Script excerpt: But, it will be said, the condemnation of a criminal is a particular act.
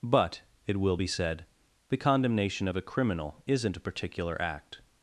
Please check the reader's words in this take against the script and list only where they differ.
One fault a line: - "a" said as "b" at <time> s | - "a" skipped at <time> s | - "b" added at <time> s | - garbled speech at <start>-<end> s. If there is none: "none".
- "is" said as "isn't" at 3.5 s